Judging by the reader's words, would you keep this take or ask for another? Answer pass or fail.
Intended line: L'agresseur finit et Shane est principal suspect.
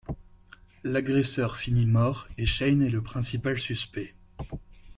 fail